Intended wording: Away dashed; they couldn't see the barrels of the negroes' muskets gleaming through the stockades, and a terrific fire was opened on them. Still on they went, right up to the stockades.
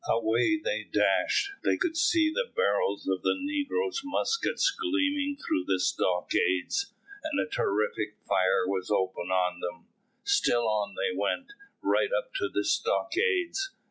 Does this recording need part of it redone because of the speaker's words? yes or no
yes